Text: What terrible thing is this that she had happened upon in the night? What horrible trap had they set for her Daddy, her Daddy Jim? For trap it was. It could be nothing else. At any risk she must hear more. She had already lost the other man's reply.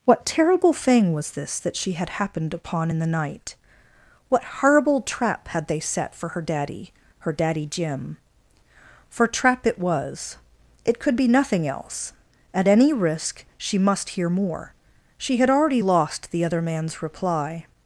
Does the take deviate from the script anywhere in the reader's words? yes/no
yes